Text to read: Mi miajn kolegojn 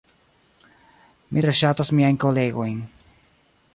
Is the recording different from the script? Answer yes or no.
yes